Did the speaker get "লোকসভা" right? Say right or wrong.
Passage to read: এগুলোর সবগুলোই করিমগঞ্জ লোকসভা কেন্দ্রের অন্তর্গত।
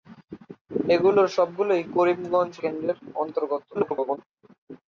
wrong